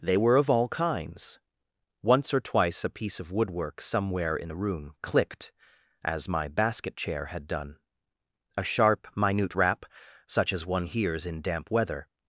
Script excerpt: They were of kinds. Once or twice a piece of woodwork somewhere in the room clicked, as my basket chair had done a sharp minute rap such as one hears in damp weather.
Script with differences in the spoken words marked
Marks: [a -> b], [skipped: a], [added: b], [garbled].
They were of [added: all] kinds. Once or twice a piece of woodwork somewhere in the room clicked, as my basket chair had done a sharp minute rap such as one hears in damp weather.